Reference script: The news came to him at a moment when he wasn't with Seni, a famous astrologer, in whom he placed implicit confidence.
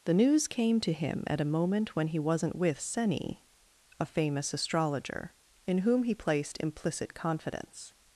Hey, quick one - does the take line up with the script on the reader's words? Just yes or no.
yes